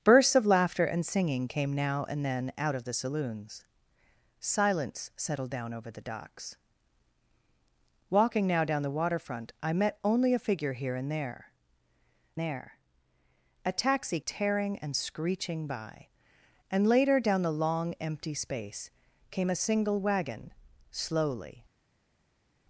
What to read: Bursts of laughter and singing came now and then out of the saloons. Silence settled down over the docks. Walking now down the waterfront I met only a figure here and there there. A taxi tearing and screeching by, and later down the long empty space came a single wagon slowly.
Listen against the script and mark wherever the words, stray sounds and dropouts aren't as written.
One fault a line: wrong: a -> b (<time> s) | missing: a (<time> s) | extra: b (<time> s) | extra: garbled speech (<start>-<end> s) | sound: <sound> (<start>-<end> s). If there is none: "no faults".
no faults